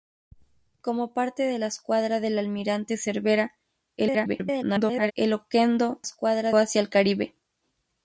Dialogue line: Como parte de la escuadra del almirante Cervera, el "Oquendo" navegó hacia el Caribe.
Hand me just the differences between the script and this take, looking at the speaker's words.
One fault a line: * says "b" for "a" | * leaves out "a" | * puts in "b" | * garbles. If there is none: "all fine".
* garbles
* says "escuadra" for "navegó"